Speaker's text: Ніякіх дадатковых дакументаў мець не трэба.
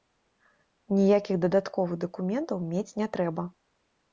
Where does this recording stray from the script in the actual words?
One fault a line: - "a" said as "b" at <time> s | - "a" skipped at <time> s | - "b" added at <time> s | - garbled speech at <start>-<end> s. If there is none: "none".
none